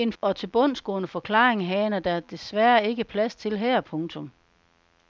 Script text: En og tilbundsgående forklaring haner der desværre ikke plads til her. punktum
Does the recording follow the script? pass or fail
pass